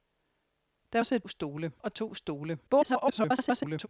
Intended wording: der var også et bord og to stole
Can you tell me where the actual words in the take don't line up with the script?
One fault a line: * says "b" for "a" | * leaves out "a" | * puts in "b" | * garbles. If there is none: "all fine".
* leaves out "var"
* says "stole" for "bord"
* garbles